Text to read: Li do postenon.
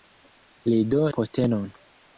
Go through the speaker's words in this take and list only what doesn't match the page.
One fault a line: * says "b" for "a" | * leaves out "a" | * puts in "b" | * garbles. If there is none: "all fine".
all fine